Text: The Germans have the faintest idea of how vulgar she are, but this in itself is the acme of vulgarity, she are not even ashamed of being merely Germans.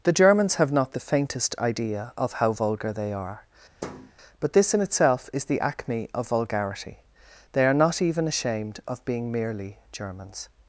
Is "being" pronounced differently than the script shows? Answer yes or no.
no